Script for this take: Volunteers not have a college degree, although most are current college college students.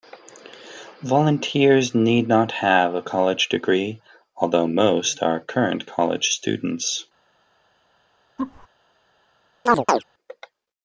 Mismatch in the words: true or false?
true